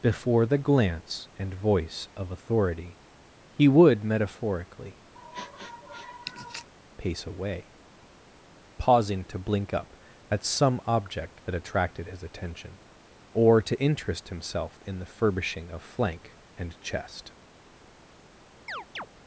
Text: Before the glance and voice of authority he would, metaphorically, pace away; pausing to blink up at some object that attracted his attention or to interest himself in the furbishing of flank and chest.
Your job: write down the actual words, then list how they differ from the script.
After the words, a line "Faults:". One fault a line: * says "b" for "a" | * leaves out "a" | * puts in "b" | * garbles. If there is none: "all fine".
Before the glance and voice of authority he would, metaphorically, pace away; pausing to blink up at some object that attracted his attention or to interest himself in the furbishing of flank and chest.
Faults:
all fine